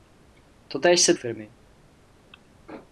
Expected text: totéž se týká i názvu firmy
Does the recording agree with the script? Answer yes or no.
no